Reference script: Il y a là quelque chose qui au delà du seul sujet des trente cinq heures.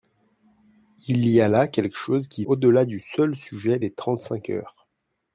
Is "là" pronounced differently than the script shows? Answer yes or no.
no